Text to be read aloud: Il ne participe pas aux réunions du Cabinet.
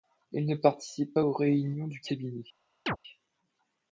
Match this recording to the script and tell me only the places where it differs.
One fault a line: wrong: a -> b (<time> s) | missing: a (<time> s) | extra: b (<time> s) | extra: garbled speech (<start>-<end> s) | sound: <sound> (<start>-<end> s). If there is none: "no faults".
sound: chirp (2.9-3.0 s)